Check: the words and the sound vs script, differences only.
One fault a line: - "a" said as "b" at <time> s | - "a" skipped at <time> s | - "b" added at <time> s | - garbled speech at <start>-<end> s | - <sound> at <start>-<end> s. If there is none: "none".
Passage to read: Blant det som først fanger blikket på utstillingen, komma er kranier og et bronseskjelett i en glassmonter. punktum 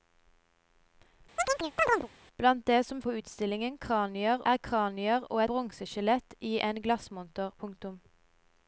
- chirp at 1.4-2.1 s
- "først fanger blikket" skipped at 3.0 s
- "komma" said as "kranier" at 3.9 s
- "et" skipped at 5.4 s